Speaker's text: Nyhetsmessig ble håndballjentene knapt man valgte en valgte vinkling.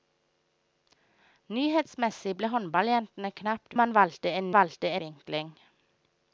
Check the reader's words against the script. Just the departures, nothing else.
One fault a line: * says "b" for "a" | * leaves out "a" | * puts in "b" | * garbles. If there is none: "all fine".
all fine